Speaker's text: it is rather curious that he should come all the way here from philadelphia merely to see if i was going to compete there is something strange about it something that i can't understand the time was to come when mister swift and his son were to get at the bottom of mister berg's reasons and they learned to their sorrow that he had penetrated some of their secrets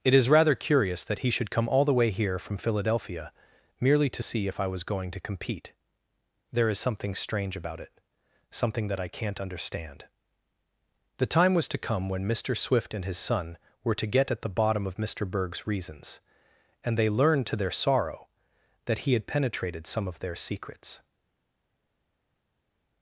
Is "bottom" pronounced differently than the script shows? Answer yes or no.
no